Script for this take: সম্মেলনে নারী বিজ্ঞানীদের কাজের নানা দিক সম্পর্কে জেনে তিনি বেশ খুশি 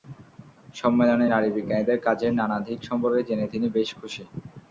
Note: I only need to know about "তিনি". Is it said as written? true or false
true